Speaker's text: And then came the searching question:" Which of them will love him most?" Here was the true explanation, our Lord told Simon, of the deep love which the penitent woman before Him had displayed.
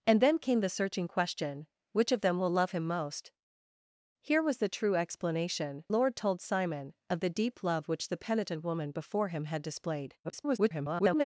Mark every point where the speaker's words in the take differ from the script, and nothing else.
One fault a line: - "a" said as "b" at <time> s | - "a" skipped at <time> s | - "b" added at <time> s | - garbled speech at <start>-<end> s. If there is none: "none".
- "our" skipped at 5.8 s
- garbled speech at 10.2-11.2 s